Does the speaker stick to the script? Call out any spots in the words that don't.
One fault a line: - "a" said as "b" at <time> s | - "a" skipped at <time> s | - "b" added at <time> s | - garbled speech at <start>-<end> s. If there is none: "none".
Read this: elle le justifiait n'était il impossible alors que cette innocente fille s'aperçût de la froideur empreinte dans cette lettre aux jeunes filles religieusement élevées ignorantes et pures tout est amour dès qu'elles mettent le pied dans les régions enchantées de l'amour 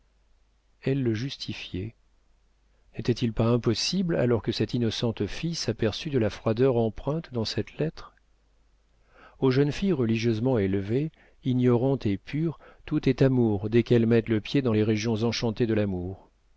- "pas" added at 3.3 s